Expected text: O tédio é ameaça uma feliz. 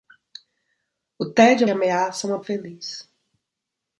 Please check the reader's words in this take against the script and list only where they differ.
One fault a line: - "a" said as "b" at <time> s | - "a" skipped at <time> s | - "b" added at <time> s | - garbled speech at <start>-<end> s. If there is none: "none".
none